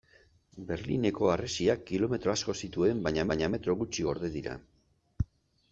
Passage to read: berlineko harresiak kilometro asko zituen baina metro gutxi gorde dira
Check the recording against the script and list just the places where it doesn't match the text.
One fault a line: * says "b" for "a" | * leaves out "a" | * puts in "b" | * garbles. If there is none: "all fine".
* puts in "baina"